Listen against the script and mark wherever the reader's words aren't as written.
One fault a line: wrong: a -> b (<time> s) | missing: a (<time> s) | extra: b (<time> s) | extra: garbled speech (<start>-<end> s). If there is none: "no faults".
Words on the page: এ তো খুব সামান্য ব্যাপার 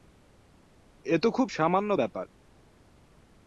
no faults